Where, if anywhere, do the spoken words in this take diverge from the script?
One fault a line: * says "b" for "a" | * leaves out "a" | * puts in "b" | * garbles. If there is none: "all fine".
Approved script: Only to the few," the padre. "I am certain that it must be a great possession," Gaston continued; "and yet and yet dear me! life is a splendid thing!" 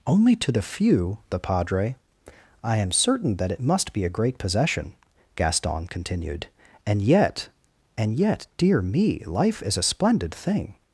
all fine